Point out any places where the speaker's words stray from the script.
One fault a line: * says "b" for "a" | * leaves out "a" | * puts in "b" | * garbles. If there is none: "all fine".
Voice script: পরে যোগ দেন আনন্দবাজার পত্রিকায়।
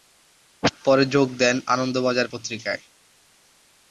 all fine